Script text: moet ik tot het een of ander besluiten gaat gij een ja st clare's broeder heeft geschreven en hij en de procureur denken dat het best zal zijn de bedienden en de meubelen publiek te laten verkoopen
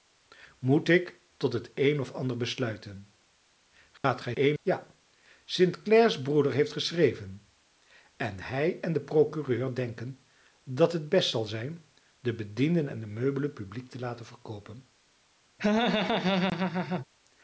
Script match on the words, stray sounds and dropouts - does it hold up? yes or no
no